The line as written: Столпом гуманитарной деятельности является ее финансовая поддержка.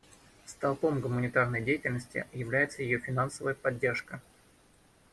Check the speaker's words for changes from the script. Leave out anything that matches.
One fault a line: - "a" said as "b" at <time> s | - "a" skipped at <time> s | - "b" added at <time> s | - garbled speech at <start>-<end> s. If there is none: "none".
none